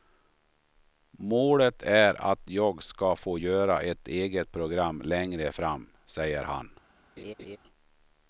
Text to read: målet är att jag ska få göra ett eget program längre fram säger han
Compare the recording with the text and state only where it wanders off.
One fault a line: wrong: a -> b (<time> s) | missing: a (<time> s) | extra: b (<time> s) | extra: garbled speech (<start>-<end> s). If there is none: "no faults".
no faults